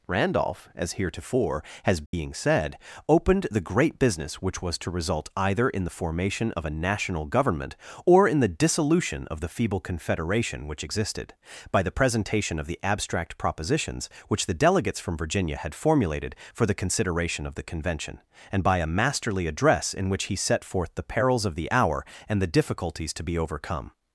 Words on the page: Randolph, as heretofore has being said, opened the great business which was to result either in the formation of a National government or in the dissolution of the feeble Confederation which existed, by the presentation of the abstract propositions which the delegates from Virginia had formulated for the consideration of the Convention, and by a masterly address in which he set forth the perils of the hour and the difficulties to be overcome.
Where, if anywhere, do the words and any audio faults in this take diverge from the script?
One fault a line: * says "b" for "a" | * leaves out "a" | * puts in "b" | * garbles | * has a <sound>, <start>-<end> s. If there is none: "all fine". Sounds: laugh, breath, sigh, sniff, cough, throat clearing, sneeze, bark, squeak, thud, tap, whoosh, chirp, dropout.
* has a dropout, 2.1-2.1 s